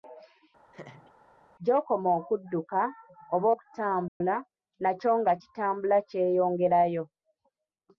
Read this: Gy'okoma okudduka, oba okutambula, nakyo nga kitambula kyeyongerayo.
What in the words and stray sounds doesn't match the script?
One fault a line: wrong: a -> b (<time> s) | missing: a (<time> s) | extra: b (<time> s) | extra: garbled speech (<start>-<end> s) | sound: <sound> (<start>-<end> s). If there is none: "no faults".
sound: laugh (0.7-1.1 s)
sound: dropout (4.1-4.2 s)